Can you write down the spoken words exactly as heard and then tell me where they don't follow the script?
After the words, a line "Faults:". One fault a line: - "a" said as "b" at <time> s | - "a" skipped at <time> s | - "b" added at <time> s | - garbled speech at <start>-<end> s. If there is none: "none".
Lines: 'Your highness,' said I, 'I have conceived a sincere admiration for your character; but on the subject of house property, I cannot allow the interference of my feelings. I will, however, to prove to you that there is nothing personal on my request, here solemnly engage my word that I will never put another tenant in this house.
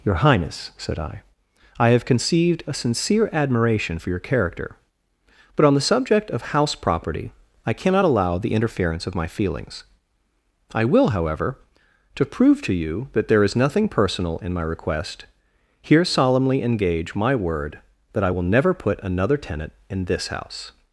'Your highness,' said I, 'I have conceived a sincere admiration for your character; but on the subject of house property, I cannot allow the interference of my feelings. I will, however, to prove to you that there is nothing personal in my request, here solemnly engage my word that I will never put another tenant in this house.
Faults:
- "on" said as "in" at 14.4 s